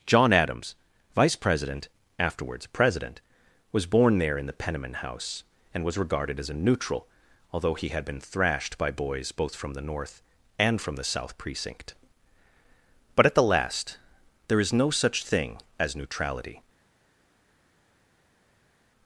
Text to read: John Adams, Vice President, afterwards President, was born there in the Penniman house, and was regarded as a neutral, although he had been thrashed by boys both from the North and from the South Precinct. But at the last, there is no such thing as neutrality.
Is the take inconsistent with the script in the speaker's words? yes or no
no